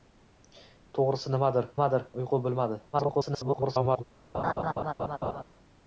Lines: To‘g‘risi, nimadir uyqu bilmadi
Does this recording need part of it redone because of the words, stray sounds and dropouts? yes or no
yes